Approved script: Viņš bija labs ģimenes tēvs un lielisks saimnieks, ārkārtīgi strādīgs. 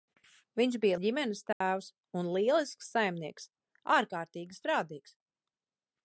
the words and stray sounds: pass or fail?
fail